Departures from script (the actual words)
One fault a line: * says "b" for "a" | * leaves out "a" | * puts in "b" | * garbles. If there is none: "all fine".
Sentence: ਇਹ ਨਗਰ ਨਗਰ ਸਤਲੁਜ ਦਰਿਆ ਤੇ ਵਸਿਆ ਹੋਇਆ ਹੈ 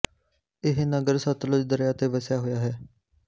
* leaves out "ਨਗਰ"